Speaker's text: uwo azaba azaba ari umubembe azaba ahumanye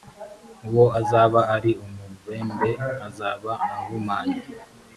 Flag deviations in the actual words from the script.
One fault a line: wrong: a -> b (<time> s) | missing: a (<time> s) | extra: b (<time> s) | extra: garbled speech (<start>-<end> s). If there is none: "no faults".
missing: azaba (1.4 s)